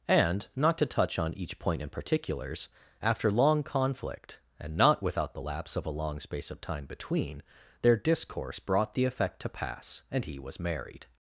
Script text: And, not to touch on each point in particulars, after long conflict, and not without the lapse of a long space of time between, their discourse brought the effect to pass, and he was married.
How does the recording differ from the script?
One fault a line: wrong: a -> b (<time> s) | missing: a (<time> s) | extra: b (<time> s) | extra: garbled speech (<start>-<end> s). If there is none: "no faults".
no faults